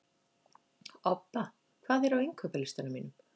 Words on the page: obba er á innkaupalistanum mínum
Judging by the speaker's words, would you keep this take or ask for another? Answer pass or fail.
fail